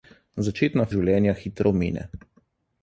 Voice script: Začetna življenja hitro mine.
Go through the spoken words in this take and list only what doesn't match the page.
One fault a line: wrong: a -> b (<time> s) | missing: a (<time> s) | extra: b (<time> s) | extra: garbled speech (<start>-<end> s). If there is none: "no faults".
no faults